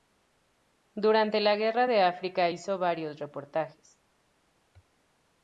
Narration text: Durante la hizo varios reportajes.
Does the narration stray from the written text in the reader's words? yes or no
yes